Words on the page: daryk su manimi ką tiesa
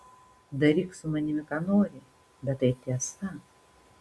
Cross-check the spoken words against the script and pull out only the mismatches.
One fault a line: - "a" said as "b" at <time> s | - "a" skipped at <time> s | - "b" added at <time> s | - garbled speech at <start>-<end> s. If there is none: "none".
- "nori bet tai" added at 1.7 s